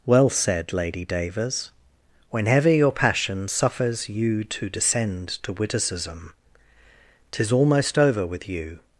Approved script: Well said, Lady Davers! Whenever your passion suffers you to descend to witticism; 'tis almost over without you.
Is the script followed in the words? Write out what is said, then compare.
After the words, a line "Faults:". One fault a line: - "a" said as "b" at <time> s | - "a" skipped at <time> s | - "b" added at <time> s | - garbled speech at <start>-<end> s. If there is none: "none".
Well said, Lady Davers! Whenever your passion suffers you to descend to witticism; 'tis almost over with you.
Faults:
- "without" said as "with" at 8.3 s